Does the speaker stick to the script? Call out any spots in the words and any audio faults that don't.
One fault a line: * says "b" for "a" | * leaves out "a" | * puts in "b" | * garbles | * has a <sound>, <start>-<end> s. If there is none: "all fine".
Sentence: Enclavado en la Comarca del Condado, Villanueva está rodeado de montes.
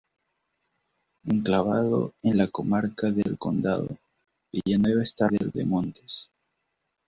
* says "del" for "rodeado"